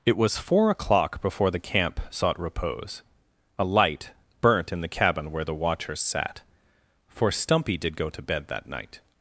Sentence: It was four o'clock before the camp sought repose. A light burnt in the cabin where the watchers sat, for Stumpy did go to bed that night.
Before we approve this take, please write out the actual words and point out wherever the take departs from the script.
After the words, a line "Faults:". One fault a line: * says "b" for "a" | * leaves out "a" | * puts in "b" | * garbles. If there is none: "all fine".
It was four o'clock before the camp sought repose. A light burnt in the cabin where the watchers sat, for Stumpy did go to bed that night.
Faults:
all fine